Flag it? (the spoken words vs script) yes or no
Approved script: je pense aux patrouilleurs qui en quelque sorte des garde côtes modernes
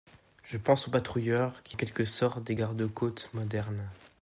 no